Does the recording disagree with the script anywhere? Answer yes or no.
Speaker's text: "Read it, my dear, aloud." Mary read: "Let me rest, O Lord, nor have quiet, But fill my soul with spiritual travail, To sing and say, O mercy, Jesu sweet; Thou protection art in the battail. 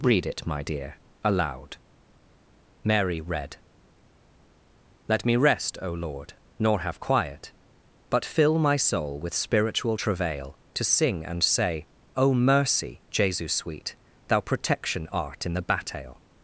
no